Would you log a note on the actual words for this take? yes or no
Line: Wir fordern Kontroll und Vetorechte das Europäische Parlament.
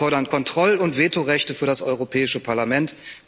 yes